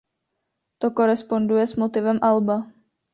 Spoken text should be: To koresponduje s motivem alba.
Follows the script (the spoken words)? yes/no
yes